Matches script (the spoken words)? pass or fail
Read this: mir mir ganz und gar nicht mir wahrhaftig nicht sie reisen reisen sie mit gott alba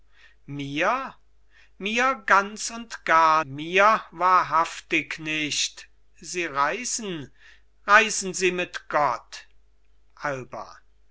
fail